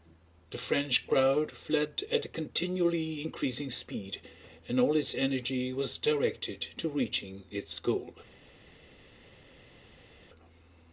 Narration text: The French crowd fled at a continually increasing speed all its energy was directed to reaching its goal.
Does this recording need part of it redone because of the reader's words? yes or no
yes